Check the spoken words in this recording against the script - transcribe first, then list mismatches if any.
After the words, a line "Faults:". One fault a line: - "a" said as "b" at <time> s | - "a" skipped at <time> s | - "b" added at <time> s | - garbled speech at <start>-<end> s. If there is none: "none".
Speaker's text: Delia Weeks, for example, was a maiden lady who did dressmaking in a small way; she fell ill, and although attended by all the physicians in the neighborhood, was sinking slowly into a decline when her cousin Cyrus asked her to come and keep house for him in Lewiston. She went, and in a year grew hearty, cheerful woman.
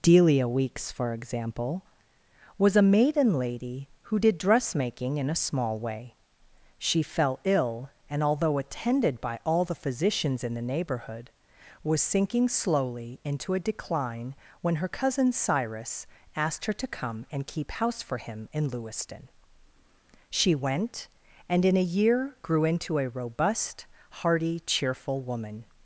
Delia Weeks, for example, was a maiden lady who did dressmaking in a small way; she fell ill, and although attended by all the physicians in the neighborhood, was sinking slowly into a decline when her cousin Cyrus asked her to come and keep house for him in Lewiston. She went, and in a year grew into a robust, hearty, cheerful woman.
Faults:
- "into a robust" added at 22.6 s